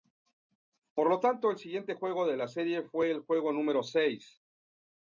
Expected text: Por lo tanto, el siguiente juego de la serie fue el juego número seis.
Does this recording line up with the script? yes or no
yes